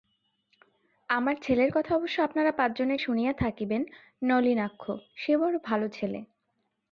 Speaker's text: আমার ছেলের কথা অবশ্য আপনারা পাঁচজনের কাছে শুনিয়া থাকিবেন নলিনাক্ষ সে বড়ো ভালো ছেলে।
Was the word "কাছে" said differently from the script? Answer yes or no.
yes